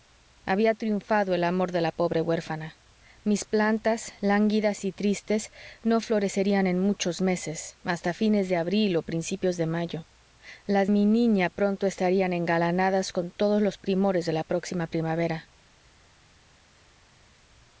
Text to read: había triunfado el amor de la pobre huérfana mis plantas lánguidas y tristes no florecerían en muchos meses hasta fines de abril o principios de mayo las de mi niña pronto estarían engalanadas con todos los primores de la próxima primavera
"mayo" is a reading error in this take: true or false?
false